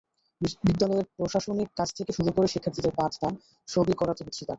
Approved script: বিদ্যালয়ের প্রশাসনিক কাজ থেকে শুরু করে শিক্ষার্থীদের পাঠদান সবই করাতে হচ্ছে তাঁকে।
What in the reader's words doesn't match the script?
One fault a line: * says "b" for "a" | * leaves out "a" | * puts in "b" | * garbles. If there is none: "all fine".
all fine